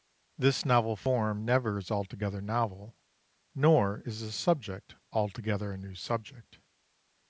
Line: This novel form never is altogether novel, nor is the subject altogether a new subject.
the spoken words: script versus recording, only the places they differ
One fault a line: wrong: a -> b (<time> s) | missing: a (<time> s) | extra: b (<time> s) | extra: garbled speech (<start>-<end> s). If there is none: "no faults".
no faults